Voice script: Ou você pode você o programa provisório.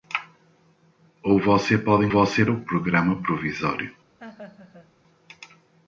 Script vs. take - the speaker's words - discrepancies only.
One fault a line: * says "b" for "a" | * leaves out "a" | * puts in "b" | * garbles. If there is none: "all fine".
all fine